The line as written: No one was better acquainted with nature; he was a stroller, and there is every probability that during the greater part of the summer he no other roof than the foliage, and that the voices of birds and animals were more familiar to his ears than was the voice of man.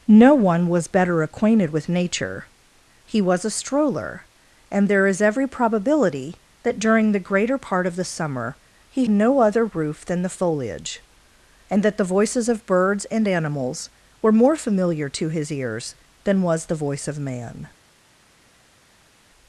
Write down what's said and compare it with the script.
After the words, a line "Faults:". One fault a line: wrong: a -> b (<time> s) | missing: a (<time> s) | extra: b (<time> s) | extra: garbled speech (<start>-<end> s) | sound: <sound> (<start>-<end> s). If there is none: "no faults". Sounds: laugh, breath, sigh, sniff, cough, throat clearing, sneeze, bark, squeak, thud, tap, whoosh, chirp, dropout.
No one was better acquainted with nature; he was a stroller, and there is every probability that during the greater part of the summer he no other roof than the foliage, and that the voices of birds and animals were more familiar to his ears than was the voice of man.
Faults:
no faults